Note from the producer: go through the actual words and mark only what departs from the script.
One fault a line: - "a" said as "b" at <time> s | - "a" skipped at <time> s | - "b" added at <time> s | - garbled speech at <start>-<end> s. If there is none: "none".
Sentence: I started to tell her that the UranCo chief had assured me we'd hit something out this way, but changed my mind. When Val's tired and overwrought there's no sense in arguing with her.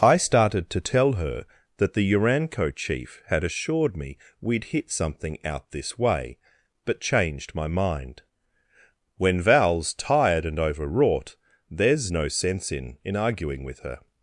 - "in" added at 13.0 s